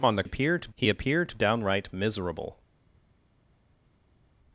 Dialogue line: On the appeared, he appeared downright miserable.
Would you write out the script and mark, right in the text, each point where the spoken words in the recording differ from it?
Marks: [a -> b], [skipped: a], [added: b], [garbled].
On the appeared, he appeared downright miserable.